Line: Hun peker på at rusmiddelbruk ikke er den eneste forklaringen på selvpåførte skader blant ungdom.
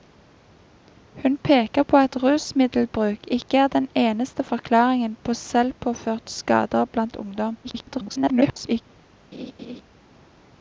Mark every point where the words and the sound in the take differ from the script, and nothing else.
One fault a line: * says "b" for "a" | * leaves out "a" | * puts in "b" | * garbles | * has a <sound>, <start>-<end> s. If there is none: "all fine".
* garbles
* has a laugh, 9.3-9.8 s